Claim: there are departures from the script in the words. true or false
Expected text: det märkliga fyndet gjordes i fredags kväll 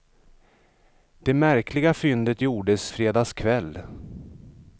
true